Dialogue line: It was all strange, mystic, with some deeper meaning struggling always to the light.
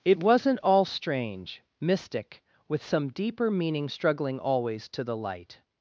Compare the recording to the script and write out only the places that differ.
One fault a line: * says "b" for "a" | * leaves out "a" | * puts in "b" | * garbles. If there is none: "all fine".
* says "wasn't" for "was"